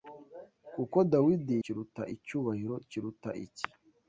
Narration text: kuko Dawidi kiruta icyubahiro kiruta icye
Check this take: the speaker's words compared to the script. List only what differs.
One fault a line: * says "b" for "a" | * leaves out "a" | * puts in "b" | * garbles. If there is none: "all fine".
all fine